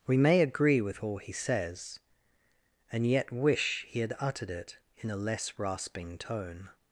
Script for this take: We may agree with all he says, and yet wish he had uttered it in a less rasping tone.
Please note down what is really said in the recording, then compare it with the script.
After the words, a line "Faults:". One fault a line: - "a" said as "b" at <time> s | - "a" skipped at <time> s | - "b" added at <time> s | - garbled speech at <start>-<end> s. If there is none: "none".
We may agree with all he says, and yet wish he had uttered it in a less rasping tone.
Faults:
none